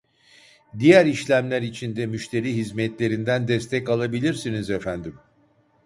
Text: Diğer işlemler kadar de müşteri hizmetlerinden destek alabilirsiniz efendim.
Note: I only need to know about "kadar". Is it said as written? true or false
false